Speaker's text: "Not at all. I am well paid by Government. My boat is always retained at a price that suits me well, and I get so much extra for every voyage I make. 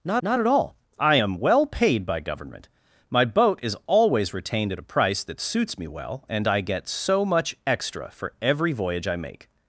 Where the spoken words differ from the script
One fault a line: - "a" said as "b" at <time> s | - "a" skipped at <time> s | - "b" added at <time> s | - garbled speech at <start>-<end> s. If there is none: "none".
- "not" added at 0.2 s